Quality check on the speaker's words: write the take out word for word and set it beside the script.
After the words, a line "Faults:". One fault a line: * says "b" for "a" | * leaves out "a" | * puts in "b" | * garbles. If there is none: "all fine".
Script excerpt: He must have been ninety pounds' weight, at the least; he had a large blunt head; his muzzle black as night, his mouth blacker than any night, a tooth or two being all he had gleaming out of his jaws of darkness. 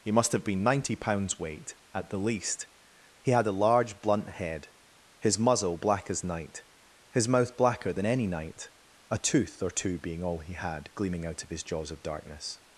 He must have been ninety pounds' weight, at the least; he had a large blunt head; his muzzle black as night, his mouth blacker than any night, a tooth or two being all he had gleaming out of his jaws of darkness.
Faults:
all fine